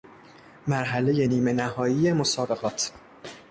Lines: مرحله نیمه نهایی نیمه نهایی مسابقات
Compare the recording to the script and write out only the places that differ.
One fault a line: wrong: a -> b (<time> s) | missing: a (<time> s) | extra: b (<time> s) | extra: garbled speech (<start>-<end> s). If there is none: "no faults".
missing: نیمه نهایی (2.1 s)